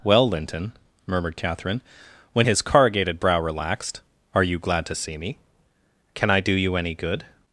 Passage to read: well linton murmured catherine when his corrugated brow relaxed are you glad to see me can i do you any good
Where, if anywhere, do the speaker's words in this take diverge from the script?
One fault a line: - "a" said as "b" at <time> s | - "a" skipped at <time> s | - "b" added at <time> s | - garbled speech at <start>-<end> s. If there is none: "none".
none